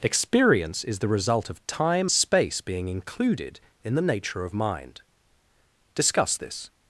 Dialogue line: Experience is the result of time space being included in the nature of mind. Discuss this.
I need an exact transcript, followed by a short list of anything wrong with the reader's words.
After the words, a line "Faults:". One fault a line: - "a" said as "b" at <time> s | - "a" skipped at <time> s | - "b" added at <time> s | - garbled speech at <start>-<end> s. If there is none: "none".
Experience is the result of time space being included in the nature of mind. Discuss this.
Faults:
none